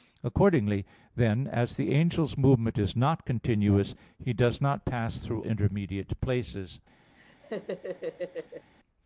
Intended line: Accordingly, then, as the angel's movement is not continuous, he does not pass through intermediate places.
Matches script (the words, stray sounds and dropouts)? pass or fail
fail